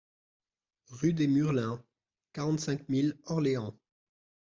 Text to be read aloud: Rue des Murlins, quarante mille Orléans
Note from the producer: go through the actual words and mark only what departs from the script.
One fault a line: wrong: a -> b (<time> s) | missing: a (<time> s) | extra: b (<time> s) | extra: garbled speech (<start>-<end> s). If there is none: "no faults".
extra: cinq (2.6 s)